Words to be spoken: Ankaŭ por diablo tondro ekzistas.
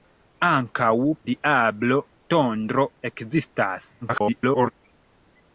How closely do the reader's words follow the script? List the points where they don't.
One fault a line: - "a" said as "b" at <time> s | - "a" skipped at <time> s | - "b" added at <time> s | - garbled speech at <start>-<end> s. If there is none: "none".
- "por" skipped at 0.9 s
- garbled speech at 4.0-4.7 s